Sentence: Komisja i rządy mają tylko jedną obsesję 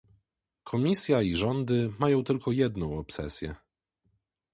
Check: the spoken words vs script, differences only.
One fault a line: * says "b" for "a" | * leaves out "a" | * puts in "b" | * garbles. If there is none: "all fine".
all fine